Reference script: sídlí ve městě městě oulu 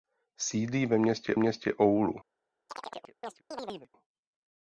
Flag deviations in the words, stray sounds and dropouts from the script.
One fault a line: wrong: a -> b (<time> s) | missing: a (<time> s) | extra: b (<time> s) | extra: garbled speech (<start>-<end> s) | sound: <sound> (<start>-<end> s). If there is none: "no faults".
sound: chirp (2.7-3.9 s)